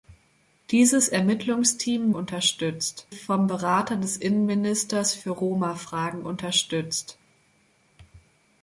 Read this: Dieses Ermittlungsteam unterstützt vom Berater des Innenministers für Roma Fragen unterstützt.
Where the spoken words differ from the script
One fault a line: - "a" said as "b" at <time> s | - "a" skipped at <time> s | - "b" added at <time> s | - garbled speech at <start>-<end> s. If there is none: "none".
none